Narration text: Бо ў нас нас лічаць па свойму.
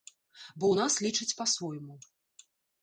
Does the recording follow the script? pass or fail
fail